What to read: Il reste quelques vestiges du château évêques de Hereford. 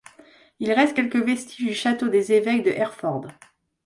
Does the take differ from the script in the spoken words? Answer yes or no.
yes